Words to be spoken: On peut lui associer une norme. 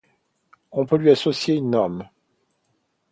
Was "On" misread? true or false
false